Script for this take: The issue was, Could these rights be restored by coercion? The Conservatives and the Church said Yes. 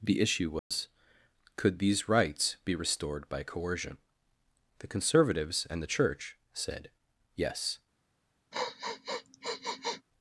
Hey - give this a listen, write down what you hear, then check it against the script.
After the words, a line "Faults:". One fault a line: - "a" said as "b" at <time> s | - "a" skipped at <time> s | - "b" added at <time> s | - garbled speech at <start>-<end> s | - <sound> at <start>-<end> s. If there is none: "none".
The issue was, Could these rights be restored by coercion? The Conservatives and the Church said Yes.
Faults:
- dropout at 0.6-0.7 s
- sniff at 8.5-10.0 s